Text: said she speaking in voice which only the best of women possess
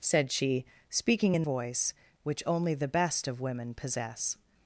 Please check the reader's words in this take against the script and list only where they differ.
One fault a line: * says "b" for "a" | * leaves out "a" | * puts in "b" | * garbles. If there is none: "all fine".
all fine